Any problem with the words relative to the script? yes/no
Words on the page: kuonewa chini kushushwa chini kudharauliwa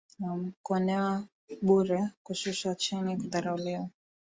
yes